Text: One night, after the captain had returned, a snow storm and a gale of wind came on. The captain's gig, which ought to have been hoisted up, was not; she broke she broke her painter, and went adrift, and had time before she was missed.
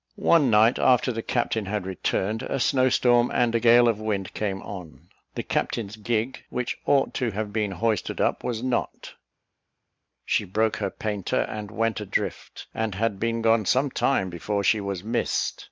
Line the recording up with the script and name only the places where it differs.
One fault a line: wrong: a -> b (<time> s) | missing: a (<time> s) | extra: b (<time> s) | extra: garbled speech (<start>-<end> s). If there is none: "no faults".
missing: she broke (10.8 s)
extra: been gone some (13.2 s)